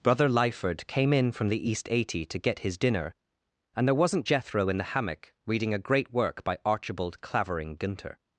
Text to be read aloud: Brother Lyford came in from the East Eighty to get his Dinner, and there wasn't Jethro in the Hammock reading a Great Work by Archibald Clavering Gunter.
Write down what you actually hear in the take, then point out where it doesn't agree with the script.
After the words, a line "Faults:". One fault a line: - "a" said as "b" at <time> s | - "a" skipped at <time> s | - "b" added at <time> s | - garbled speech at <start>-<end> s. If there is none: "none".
Brother Lyford came in from the East Eighty to get his Dinner, and there wasn't Jethro in the Hammock reading a Great Work by Archibald Clavering Gunter.
Faults:
none